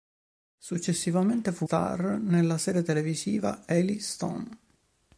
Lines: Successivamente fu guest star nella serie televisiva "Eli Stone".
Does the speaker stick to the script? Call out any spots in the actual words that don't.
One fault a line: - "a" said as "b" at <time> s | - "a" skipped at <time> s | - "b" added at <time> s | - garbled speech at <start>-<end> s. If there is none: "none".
- "guest" skipped at 1.7 s